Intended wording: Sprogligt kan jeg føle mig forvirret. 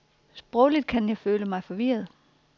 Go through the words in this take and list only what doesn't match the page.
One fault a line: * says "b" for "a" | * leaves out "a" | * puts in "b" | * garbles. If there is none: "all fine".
all fine